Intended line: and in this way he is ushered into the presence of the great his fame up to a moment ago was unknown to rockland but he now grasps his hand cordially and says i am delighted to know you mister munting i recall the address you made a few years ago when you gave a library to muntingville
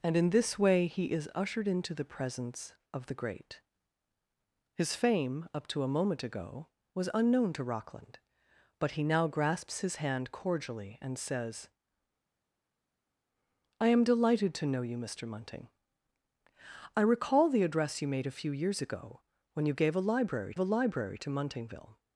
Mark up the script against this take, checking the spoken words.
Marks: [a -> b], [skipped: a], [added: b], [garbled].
and in this way he is ushered into the presence of the great his fame up to a moment ago was unknown to rockland but he now grasps his hand cordially and says i am delighted to know you mister munting i recall the address you made a few years ago when you gave a library [added: a library] to muntingville